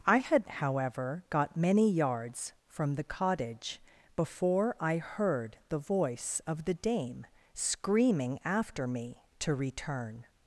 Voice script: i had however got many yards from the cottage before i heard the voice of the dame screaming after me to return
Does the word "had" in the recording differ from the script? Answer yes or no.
no